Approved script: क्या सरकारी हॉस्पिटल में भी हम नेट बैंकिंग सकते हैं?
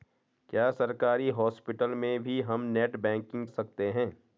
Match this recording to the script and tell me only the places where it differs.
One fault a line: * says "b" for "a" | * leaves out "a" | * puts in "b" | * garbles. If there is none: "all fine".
all fine